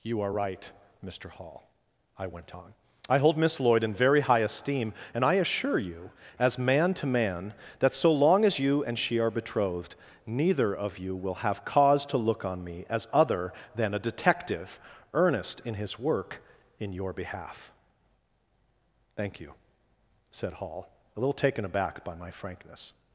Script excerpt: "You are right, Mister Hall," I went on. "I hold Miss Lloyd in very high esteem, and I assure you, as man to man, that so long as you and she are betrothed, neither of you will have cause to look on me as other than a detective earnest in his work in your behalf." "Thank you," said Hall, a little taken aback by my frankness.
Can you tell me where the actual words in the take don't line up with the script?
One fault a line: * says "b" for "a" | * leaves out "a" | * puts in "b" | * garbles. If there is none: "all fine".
all fine